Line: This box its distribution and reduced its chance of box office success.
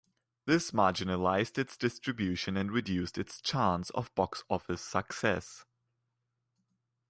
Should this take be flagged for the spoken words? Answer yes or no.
yes